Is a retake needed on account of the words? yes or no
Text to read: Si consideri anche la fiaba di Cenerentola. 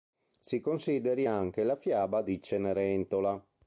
no